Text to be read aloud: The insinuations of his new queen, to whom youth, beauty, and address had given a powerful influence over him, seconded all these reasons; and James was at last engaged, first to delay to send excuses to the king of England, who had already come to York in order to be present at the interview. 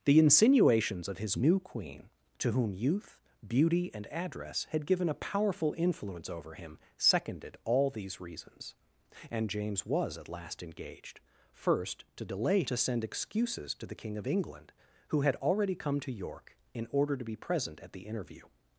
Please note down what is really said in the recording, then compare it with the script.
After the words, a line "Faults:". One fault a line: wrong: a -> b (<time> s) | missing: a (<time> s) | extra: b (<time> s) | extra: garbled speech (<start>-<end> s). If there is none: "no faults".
The insinuations of his new queen, to whom youth, beauty, and address had given a powerful influence over him, seconded all these reasons; and James was at last engaged, first to delay to send excuses to the king of England, who had already come to York in order to be present at the interview.
Faults:
no faults